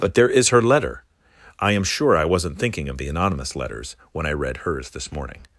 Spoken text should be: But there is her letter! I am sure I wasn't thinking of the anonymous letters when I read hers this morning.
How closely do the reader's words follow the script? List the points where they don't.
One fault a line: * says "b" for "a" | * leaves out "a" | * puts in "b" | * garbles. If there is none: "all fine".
all fine